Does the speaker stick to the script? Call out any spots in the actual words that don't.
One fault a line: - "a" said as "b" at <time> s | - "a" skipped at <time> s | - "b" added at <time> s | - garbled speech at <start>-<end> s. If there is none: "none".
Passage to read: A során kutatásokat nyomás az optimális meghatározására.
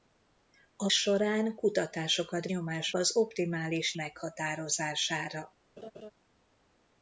none